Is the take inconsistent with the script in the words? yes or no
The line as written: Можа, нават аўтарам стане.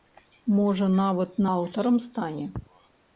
no